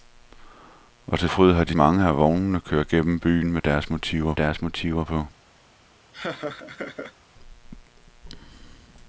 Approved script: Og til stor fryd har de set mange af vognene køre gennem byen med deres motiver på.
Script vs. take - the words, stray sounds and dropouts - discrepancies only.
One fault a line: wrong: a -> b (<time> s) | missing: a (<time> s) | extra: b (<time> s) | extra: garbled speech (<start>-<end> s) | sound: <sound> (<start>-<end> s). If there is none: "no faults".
missing: stor (1.3 s)
missing: set (1.8 s)
extra: deres motiver (4.3 s)
sound: laugh (6.1-7.1 s)